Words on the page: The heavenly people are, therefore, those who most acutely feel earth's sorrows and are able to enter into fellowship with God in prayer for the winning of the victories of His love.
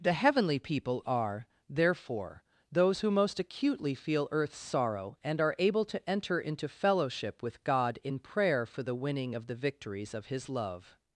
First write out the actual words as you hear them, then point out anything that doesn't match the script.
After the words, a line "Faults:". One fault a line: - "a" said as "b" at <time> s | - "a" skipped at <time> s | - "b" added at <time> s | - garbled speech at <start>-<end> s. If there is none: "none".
The heavenly people are, therefore, those who most acutely feel earth's sorrow and are able to enter into fellowship with God in prayer for the winning of the victories of His love.
Faults:
- "sorrows" said as "sorrow" at 4.6 s